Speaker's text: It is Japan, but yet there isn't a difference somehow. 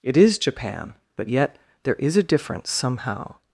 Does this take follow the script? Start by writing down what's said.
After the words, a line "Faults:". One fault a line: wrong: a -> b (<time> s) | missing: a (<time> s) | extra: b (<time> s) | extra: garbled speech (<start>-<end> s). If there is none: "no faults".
It is Japan, but yet there is a difference somehow.
Faults:
wrong: isn't -> is (2.0 s)